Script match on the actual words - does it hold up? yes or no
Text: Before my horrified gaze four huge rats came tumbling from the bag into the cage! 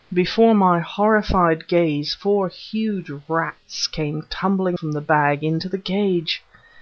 yes